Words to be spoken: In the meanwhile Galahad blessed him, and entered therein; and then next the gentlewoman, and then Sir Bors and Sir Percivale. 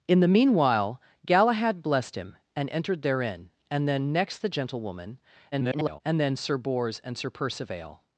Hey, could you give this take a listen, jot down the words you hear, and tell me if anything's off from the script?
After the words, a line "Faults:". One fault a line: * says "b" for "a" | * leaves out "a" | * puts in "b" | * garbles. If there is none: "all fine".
In the meanwhile Galahad blessed him, and entered therein; and then next the gentlewoman, [garbled] and then Sir Bors and Sir Percivale.
Faults:
* garbles